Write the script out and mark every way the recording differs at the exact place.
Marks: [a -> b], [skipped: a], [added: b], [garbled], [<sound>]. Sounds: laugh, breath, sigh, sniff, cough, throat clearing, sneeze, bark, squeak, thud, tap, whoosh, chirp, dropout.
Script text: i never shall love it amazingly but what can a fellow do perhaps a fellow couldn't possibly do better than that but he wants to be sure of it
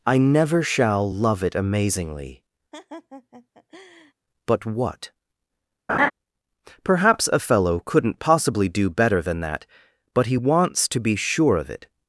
i never shall love it amazingly [laugh] but what [skipped: can a fellow do] [laugh] perhaps a fellow couldn't possibly do better than that but he wants to be sure of it